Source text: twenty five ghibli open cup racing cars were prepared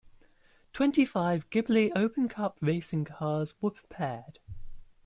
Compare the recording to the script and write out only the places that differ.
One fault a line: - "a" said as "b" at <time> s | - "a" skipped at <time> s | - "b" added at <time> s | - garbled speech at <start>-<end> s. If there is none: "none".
none